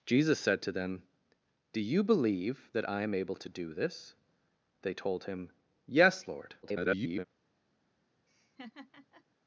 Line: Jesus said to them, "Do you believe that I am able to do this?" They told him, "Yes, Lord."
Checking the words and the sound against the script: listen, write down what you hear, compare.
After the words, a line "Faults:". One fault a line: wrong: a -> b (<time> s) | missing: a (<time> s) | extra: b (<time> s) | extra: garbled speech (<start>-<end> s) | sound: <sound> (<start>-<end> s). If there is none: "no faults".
Jesus said to them, "Do you believe that I am able to do this?" They told him, "Yes, Lord." [garbled]
Faults:
extra: garbled speech (6.6-7.3 s)
sound: laugh (8.3-9.2 s)